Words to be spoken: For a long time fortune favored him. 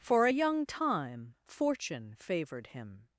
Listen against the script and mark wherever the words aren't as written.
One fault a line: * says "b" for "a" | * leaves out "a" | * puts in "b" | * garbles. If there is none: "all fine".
* says "young" for "long"